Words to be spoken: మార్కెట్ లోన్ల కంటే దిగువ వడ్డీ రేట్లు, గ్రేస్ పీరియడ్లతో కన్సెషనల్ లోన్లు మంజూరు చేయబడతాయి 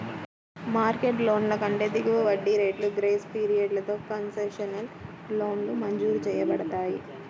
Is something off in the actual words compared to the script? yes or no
no